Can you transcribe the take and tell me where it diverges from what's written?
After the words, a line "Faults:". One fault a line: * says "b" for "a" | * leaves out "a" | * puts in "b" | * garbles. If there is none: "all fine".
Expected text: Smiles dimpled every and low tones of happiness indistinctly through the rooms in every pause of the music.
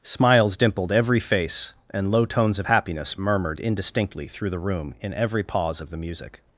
Smiles dimpled every face, and low tones of happiness murmured indistinctly through the room in every pause of the music.
Faults:
* puts in "face"
* puts in "murmured"
* says "room" for "rooms"